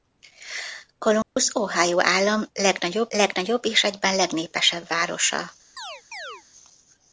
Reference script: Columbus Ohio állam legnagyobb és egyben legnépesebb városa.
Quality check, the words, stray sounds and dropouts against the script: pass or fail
fail